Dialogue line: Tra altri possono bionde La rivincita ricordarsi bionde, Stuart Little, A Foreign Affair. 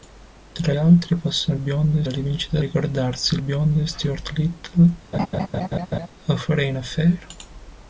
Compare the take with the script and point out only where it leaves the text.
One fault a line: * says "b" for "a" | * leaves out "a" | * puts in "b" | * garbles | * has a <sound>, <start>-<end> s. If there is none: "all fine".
* has a laugh, 5.1-6.1 s